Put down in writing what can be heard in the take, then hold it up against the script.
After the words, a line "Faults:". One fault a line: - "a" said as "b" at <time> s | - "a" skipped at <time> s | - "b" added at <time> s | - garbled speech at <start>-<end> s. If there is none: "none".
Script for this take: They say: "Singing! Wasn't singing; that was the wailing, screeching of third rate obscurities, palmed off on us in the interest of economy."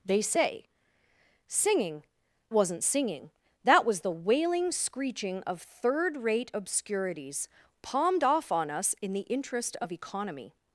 They say: "Singing! Wasn't singing; that was the wailing, screeching of third rate obscurities, palmed off on us in the interest of economy."
Faults:
none